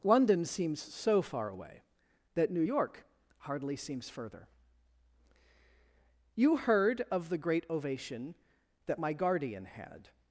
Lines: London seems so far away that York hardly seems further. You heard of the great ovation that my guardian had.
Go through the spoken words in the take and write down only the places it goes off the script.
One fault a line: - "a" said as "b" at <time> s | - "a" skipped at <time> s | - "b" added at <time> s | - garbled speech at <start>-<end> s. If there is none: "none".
- "New" added at 2.5 s